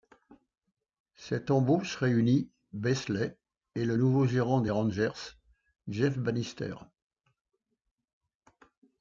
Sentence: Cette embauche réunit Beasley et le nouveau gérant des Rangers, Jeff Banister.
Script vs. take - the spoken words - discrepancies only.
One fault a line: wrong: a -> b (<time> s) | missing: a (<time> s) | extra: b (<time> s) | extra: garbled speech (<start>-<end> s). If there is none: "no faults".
no faults